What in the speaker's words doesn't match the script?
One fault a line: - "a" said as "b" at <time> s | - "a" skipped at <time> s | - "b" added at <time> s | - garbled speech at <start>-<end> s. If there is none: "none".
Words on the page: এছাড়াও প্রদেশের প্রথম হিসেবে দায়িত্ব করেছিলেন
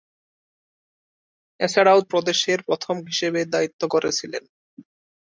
none